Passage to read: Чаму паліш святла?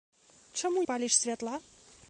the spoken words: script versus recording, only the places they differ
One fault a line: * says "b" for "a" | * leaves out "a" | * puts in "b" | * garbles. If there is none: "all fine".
all fine